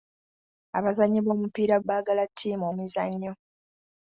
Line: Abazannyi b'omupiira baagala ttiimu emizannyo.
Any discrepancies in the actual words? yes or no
no